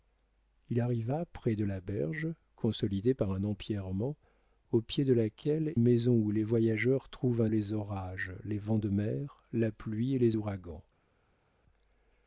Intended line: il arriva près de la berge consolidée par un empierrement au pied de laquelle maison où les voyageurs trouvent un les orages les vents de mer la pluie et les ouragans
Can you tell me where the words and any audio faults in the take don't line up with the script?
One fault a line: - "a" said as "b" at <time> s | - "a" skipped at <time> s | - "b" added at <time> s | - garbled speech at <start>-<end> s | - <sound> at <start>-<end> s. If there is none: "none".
none